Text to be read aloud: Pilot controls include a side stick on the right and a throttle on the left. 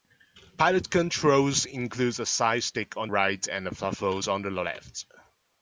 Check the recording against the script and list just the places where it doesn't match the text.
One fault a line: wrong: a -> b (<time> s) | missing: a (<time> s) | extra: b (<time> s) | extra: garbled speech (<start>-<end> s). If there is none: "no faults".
missing: the (3.1 s)